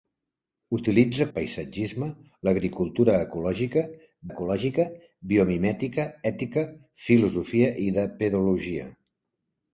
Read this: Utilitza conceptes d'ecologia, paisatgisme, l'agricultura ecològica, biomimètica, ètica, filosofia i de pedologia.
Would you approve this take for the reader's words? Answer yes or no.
no